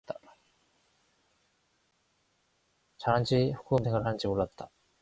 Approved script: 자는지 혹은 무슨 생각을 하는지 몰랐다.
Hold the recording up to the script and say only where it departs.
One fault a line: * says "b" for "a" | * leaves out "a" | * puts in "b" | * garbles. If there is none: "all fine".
* leaves out "무슨"